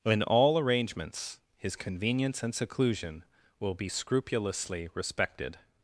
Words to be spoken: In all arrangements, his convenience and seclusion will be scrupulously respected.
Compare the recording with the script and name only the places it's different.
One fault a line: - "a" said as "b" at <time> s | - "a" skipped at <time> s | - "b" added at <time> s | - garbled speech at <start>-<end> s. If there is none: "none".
none